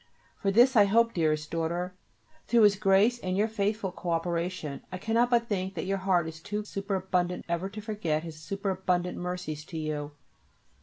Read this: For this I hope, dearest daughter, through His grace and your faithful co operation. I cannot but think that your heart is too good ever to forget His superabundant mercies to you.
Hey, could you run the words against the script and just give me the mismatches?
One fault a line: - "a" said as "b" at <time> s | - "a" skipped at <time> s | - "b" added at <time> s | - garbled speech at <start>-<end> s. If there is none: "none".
- "good" said as "superabundant" at 6.7 s